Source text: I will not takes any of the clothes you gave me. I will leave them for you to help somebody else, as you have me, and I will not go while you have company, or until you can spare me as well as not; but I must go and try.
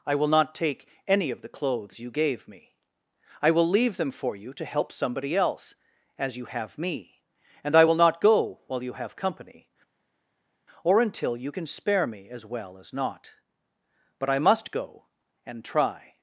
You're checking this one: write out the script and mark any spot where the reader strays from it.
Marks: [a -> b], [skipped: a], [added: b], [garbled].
I will not [takes -> take] any of the clothes you gave me. I will leave them for you to help somebody else, as you have me, and I will not go while you have company, or until you can spare me as well as not; but I must go and try.